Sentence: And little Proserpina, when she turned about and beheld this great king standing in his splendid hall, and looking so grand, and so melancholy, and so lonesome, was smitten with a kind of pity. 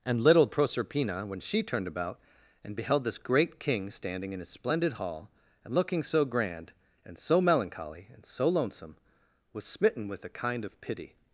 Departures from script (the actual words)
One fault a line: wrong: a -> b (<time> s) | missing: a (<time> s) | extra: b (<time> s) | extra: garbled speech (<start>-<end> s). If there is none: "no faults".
no faults